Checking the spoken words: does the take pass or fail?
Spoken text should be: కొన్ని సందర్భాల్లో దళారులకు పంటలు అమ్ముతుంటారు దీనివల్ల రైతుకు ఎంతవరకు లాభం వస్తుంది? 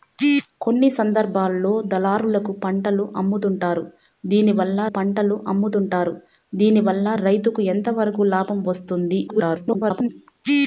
fail